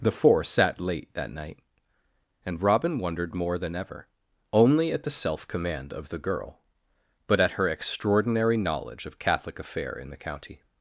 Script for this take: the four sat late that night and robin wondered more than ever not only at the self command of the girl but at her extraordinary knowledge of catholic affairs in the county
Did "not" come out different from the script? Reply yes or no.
yes